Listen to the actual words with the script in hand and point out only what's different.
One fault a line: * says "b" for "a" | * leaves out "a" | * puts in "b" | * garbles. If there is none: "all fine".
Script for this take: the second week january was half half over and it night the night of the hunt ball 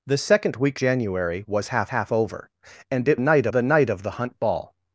all fine